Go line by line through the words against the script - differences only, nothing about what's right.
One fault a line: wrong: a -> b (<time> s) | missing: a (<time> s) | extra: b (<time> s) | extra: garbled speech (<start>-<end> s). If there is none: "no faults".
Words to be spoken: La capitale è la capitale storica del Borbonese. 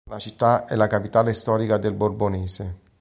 wrong: capitale -> città (0.1 s)